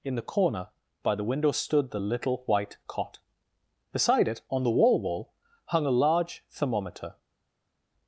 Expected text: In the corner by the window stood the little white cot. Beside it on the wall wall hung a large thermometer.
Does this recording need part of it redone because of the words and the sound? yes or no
no